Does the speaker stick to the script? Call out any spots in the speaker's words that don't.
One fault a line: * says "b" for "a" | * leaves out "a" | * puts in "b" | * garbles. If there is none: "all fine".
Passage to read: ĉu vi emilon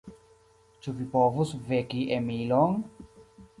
* puts in "povus veki"